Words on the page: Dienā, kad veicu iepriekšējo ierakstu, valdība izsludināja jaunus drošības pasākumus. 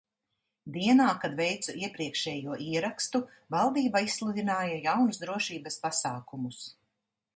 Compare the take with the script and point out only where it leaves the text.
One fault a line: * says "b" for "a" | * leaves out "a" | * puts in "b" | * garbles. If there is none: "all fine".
all fine